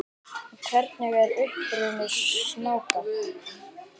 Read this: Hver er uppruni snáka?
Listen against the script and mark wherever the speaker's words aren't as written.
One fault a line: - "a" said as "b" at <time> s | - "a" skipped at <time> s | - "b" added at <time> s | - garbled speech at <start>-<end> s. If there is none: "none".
none